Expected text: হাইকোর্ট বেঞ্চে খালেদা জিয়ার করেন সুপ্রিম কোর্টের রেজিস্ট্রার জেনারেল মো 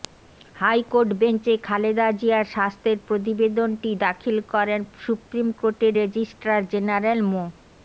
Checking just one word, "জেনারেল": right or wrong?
right